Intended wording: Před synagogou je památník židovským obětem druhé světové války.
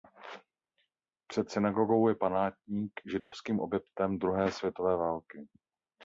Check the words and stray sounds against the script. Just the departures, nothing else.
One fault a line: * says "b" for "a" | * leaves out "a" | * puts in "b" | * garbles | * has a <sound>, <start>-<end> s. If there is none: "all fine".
* has a dropout, 3.2-3.3 s